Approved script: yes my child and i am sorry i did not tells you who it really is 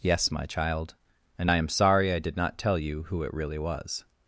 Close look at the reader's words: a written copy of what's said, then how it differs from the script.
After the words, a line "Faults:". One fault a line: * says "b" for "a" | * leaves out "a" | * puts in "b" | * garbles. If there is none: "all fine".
yes my child and i am sorry i did not tell you who it really was
Faults:
* says "tell" for "tells"
* says "was" for "is"